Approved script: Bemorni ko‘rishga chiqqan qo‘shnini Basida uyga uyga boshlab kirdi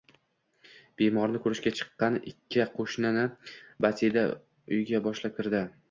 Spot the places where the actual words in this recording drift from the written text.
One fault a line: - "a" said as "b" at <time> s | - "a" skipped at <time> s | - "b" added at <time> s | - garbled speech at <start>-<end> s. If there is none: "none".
- "ikki" added at 2.3 s
- "uyga" skipped at 5.0 s